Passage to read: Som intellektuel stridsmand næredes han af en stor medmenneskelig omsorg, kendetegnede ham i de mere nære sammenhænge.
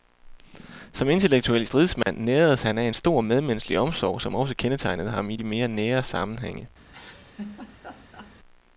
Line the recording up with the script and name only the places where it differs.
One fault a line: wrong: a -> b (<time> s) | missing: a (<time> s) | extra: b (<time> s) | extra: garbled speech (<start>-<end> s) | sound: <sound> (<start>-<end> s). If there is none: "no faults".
sound: dropout (2.0-2.1 s)
extra: som også (4.2 s)
sound: laugh (6.9-8.4 s)